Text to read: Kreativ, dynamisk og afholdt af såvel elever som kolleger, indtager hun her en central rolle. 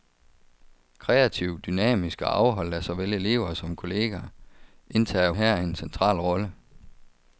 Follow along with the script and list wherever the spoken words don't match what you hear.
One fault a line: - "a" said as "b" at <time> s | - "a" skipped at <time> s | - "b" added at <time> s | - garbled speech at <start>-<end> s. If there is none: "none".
- "hun" skipped at 5.3 s